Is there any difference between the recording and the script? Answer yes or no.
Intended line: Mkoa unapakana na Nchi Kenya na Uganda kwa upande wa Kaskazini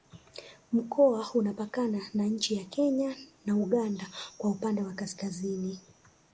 yes